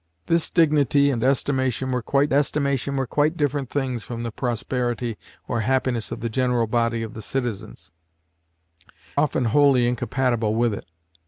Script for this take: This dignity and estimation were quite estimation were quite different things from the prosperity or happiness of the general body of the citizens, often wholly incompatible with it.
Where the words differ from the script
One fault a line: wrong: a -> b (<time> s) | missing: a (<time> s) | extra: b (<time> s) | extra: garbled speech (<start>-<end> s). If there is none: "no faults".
no faults